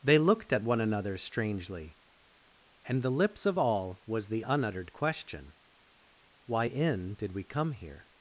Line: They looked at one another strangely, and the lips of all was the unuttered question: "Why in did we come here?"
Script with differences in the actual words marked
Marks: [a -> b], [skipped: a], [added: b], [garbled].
They looked at one another strangely, and the lips of all was the unuttered question: "Why in did we come here?"